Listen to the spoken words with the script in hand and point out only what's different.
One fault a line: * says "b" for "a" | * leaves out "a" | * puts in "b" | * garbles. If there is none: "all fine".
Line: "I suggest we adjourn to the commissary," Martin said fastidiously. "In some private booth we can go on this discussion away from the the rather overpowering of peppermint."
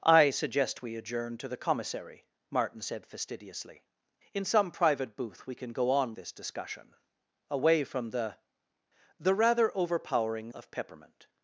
all fine